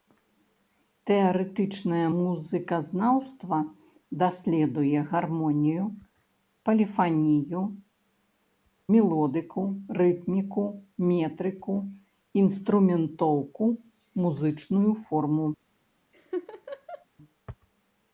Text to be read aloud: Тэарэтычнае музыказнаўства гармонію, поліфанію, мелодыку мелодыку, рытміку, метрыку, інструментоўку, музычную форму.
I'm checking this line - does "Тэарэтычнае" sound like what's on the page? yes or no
yes